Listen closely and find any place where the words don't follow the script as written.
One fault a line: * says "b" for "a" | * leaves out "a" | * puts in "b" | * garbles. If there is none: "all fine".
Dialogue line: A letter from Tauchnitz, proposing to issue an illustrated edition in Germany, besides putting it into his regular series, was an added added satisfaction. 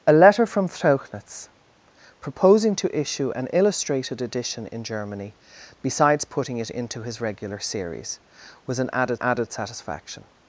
all fine